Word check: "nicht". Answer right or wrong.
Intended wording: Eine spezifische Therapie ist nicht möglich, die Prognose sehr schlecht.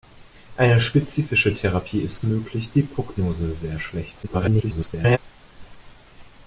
wrong